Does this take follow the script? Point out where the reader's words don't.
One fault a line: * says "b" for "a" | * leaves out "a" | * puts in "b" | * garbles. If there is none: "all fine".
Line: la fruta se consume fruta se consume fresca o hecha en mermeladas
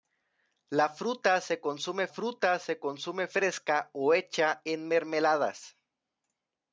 all fine